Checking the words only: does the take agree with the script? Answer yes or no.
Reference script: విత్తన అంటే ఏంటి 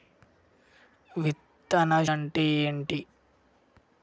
yes